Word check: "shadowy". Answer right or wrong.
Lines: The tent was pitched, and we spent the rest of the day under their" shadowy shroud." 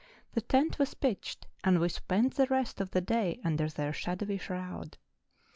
right